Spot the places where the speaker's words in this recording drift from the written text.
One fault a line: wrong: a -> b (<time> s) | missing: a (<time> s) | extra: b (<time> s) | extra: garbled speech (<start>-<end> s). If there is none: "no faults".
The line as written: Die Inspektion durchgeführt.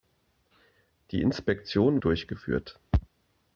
no faults